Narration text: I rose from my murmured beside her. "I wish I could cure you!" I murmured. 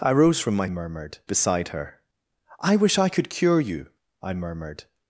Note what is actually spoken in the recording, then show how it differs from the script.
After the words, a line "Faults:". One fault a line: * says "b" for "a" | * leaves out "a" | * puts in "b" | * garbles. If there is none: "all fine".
I rose from my murmured beside her. "I wish I could cure you!" I murmured.
Faults:
all fine